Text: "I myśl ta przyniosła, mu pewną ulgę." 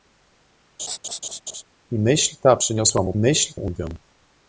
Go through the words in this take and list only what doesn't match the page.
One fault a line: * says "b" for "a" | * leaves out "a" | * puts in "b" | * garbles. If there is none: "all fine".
* says "myśl" for "pewną"